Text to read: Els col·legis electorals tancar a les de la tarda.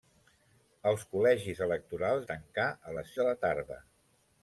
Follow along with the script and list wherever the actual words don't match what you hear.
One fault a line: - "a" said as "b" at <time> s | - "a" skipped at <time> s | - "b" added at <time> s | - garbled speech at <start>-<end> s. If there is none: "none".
none